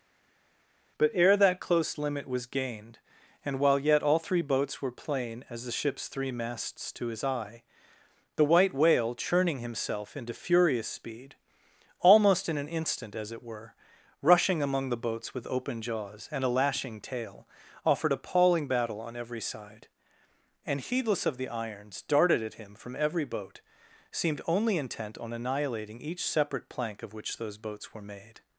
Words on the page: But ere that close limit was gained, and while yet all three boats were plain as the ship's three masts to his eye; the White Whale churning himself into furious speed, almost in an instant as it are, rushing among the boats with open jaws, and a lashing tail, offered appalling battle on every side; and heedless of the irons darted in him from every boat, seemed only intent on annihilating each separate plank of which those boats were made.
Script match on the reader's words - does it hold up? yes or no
no